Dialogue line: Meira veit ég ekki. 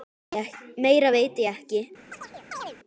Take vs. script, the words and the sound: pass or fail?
fail